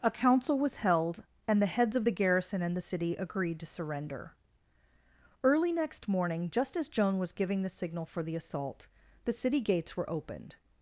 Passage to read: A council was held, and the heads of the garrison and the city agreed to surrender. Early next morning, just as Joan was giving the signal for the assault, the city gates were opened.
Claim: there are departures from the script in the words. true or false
false